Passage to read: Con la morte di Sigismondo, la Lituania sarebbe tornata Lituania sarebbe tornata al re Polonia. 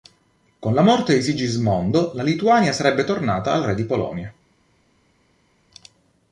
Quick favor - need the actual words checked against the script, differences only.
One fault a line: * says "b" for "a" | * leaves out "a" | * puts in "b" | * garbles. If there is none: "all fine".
* leaves out "Lituania sarebbe tornata"
* puts in "di"